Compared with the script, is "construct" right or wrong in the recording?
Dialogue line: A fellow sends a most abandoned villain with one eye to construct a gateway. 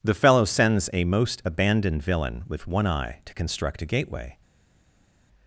right